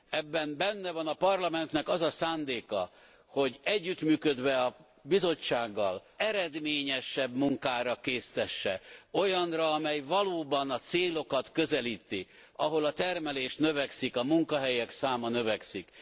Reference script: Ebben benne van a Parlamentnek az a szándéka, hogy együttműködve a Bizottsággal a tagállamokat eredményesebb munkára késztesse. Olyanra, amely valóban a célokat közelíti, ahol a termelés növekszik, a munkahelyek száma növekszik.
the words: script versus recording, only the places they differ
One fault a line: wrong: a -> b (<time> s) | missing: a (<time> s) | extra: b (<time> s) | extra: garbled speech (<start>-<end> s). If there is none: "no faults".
missing: a tagállamokat (6.0 s)